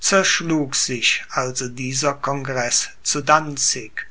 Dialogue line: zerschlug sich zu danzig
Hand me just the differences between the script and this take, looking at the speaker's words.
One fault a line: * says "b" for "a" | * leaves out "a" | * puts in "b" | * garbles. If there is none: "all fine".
* puts in "also dieser congreß"